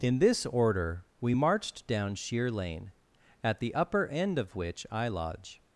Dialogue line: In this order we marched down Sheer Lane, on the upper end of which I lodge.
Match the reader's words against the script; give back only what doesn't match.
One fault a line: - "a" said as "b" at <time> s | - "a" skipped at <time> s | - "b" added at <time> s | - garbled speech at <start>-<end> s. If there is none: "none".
- "on" said as "at" at 3.4 s